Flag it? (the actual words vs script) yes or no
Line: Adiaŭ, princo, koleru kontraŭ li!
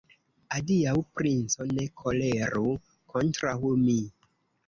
yes